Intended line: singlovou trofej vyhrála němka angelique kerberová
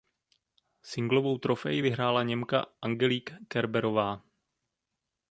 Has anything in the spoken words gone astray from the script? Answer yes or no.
no